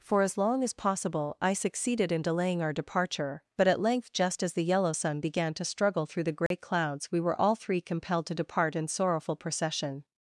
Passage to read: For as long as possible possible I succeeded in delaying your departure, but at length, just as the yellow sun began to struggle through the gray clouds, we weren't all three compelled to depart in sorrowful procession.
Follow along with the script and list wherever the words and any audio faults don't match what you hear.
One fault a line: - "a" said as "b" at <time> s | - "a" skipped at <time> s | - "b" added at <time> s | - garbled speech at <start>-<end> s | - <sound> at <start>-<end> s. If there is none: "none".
- "possible" skipped at 1.4 s
- "your" said as "our" at 2.6 s
- dropout at 6.5-6.5 s
- "weren't" said as "were" at 7.2 s